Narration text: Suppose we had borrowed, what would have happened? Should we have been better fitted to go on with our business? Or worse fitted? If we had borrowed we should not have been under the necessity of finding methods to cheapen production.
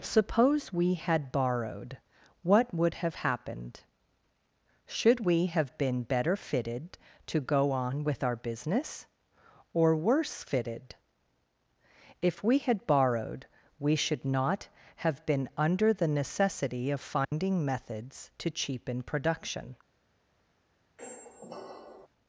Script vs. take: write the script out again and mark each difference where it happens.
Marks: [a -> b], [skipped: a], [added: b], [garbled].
Suppose we had borrowed, what would have happened? Should we have been better fitted to go on with our business? Or worse fitted? If we had borrowed we should not have been under the necessity of finding methods to cheapen production.